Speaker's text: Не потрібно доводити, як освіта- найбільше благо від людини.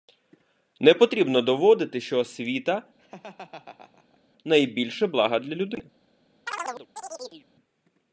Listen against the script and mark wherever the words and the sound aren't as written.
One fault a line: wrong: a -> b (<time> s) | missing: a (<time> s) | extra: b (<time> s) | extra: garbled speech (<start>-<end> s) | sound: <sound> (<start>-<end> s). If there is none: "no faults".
wrong: як -> що (2.0 s)
sound: laugh (3.0-4.2 s)
wrong: від -> для (5.4 s)
sound: chirp (6.5-7.5 s)